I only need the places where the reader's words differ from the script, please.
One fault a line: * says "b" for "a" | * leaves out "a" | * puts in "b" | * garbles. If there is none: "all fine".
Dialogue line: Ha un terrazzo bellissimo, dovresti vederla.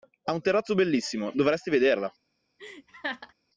all fine